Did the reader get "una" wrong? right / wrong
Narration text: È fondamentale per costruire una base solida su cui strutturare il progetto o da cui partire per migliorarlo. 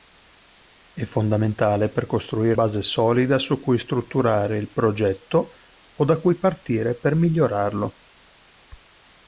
wrong